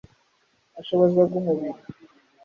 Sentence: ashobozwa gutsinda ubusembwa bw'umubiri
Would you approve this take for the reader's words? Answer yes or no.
no